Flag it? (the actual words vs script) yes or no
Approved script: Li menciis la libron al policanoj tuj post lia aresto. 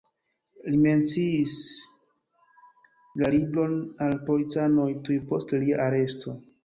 no